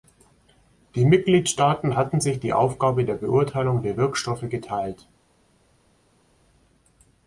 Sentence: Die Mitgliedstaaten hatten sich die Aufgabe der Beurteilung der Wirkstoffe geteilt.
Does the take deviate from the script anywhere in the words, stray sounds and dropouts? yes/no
no